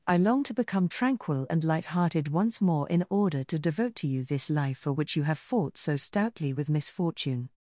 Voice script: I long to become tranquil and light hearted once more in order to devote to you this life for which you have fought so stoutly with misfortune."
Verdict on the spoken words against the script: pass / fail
pass